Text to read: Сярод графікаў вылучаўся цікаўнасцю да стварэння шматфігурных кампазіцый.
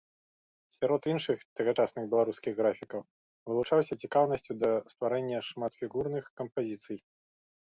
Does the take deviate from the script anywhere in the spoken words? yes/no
yes